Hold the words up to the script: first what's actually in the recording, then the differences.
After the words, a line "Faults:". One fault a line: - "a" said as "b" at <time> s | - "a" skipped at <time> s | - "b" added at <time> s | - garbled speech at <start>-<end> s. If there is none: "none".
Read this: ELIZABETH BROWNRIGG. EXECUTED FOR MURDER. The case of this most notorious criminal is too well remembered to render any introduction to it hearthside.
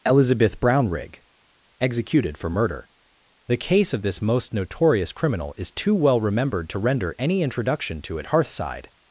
ELIZABETH BROWNRIGG. EXECUTED FOR MURDER. The case of this most notorious criminal is too well remembered to render any introduction to it hearthside.
Faults:
none